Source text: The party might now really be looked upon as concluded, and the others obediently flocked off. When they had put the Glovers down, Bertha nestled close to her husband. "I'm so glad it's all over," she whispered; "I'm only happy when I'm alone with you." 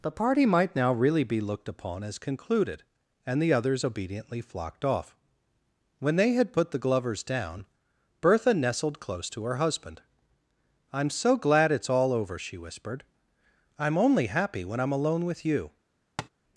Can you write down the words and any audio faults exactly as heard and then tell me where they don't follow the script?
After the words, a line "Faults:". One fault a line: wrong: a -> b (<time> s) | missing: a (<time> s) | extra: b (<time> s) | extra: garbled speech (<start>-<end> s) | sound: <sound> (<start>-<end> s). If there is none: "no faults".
The party might now really be looked upon as concluded, and the others obediently flocked off. When they had put the Glovers down, Bertha nestled close to her husband. "I'm so glad it's all over," she whispered; "I'm only happy when I'm alone with you."
Faults:
sound: tap (16.2-16.3 s)